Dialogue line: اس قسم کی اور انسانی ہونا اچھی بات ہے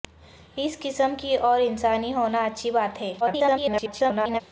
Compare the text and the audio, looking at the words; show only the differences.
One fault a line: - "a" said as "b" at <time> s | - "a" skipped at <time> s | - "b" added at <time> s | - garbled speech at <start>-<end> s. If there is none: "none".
- garbled speech at 3.2-4.4 s